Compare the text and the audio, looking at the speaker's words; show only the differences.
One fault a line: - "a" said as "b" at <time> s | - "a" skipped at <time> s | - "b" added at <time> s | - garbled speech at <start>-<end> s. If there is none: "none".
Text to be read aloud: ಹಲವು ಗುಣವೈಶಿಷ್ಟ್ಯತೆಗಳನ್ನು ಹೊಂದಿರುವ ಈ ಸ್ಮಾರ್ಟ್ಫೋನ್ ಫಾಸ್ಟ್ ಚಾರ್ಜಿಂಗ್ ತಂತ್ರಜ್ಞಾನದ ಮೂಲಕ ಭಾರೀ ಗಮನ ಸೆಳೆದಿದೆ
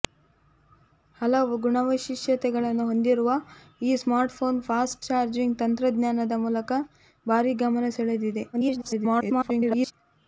- garbled speech at 8.5-9.9 s